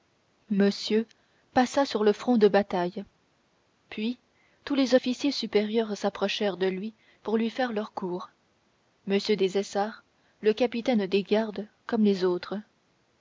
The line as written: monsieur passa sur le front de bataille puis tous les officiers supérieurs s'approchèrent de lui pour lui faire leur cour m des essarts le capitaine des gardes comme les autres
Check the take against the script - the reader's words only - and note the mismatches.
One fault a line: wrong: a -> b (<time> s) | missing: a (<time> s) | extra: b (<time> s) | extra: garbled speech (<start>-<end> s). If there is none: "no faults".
no faults